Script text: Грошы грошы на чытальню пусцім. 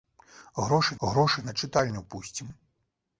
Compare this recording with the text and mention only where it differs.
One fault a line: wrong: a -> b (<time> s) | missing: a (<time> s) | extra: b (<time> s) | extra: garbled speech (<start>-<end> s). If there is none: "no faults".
no faults